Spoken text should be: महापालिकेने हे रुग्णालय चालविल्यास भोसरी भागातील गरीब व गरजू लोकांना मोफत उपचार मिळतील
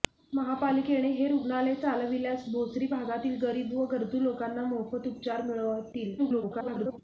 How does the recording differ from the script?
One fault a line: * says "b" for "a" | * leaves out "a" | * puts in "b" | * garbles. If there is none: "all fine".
* garbles